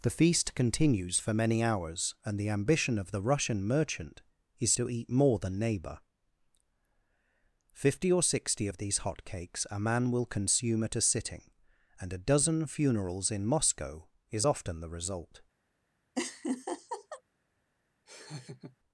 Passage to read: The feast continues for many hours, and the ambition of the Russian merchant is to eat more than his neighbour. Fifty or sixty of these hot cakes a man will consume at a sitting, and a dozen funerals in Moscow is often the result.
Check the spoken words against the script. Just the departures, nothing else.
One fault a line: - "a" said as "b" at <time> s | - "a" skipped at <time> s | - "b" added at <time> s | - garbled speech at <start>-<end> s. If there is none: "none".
- "his" skipped at 5.6 s